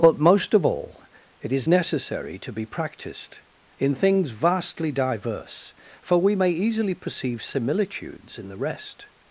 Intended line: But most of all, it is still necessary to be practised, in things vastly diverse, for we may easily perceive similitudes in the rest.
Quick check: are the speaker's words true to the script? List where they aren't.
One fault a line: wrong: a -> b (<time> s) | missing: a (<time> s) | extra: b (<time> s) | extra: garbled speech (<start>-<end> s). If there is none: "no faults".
missing: still (1.7 s)